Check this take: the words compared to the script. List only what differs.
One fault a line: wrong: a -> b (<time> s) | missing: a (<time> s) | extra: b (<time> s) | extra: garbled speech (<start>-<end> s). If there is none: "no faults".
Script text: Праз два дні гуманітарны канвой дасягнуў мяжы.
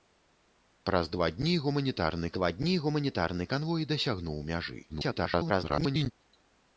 extra: два дні гуманітарны (2.4 s)
extra: garbled speech (4.9-6.1 s)